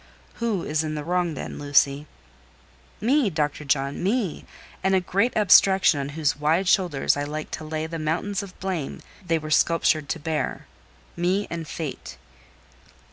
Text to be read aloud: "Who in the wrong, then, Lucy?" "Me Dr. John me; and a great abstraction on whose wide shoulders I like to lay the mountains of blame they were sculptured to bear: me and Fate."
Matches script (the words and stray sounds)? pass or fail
fail